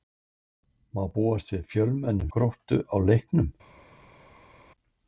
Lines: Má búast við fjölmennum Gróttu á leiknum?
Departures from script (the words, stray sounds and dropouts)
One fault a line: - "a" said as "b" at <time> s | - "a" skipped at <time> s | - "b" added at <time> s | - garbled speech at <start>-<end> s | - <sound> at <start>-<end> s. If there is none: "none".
none